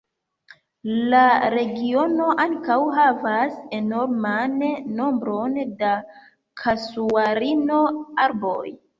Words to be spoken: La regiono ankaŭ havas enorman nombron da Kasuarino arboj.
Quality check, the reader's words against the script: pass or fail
pass